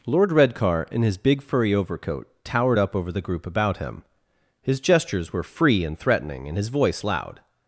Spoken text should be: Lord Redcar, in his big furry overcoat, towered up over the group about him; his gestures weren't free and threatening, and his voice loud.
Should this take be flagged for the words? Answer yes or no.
yes